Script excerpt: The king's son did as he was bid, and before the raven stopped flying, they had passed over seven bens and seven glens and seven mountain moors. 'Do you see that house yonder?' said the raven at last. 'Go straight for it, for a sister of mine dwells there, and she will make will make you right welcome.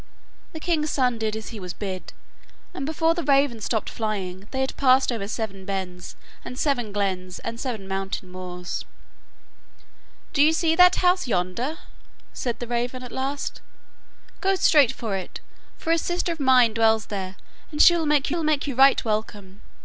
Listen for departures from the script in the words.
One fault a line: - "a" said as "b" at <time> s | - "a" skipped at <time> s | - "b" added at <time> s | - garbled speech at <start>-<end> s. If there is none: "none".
none